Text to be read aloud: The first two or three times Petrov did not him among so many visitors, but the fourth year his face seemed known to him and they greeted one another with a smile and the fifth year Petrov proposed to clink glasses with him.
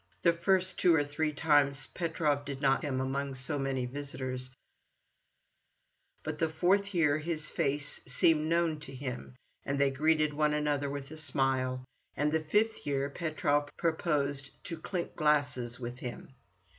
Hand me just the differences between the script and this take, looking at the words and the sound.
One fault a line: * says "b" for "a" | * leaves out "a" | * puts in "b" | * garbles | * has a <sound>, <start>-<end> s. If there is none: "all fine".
all fine